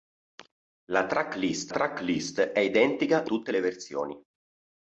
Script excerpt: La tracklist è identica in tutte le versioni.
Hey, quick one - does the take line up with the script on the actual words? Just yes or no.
no